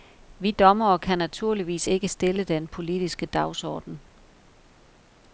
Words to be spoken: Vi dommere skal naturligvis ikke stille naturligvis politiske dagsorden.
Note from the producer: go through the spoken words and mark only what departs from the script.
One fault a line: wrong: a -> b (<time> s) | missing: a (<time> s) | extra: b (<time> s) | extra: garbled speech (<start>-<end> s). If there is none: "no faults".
wrong: skal -> kan (1.0 s)
wrong: naturligvis -> den (2.4 s)